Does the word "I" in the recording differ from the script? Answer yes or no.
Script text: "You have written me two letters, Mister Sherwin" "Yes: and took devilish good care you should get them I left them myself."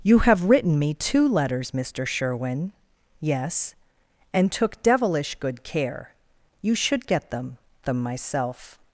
yes